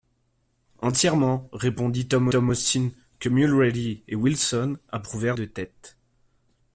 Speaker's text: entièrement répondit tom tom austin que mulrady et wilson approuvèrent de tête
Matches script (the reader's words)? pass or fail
pass